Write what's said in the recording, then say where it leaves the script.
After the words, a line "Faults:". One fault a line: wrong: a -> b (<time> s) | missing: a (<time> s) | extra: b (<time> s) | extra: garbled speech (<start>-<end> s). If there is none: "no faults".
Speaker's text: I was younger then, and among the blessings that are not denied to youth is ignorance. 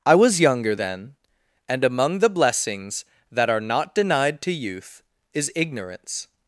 I was younger then, and among the blessings that are not denied to youth is ignorance.
Faults:
no faults